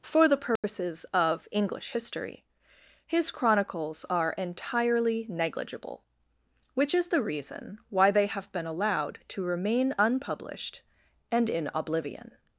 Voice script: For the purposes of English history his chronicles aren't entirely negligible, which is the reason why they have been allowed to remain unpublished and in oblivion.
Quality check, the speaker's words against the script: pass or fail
fail